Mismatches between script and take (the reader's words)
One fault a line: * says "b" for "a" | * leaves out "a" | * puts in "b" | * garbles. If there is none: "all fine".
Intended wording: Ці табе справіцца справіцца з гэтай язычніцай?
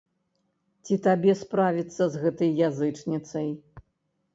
* leaves out "справіцца"